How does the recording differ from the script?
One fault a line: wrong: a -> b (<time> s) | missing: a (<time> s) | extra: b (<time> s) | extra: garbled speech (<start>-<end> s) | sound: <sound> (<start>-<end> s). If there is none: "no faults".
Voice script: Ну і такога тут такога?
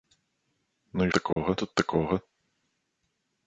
sound: dropout (1.3-1.4 s)